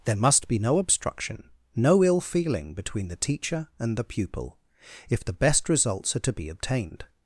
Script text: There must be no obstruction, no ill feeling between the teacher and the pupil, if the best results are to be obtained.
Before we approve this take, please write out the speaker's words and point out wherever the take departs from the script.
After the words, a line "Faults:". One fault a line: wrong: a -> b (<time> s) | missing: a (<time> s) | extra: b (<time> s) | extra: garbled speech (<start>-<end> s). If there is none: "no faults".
There must be no obstruction, no ill feeling between the teacher and the pupil, if the best results are to be obtained.
Faults:
no faults